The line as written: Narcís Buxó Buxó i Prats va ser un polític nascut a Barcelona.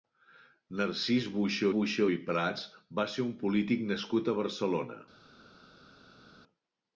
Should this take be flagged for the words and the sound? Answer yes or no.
no